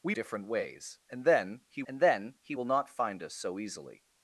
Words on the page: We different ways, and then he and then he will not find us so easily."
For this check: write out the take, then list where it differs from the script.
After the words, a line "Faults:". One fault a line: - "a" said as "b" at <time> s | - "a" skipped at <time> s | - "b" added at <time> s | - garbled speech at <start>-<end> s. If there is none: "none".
We different ways, and then he and then he will not find us so easily."
Faults:
none